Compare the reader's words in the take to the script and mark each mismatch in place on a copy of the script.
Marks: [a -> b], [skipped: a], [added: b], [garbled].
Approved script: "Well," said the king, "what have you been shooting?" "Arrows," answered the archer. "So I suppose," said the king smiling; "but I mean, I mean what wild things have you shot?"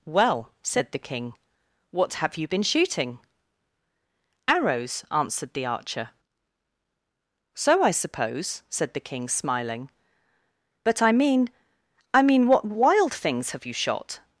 "Well," said the king, "what have you been shooting?" "Arrows," answered the archer. "So I suppose," said the king smiling; "but I mean, I mean what wild things have you shot?"